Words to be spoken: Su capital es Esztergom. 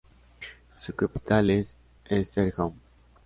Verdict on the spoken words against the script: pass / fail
pass